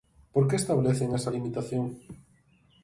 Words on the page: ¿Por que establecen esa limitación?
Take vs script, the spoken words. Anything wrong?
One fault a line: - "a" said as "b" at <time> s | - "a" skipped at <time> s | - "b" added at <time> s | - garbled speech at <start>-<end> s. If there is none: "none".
none